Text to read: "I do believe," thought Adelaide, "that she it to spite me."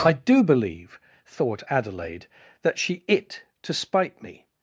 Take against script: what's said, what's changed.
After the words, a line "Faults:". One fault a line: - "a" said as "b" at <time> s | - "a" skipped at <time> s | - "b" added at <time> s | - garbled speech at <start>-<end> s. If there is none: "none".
"I do believe," thought Adelaide, "that she it to spite me."
Faults:
none